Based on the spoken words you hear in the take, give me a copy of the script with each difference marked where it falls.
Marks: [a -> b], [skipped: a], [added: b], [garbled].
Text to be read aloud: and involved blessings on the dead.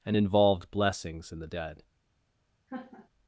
and involved blessings [on -> in] the dead.